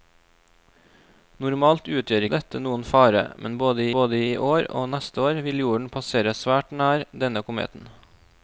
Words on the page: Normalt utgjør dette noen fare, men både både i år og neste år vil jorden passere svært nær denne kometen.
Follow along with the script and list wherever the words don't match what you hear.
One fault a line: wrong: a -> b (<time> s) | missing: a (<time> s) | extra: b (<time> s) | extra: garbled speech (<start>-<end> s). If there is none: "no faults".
no faults